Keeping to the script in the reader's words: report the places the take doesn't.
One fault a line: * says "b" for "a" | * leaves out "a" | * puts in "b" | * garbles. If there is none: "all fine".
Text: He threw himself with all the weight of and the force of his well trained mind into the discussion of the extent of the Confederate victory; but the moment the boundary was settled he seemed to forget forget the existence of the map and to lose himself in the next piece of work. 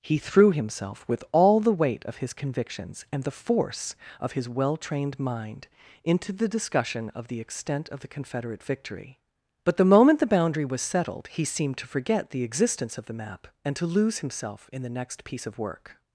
* puts in "his convictions"
* leaves out "forget"